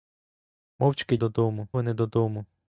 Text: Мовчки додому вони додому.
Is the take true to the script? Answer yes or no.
yes